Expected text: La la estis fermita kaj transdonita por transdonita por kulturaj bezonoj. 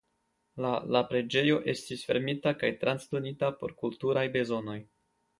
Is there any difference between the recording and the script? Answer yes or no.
yes